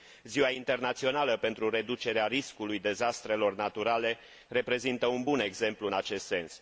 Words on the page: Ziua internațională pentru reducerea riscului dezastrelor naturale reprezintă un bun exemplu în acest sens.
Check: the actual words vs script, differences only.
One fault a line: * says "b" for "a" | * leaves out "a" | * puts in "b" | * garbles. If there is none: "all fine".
all fine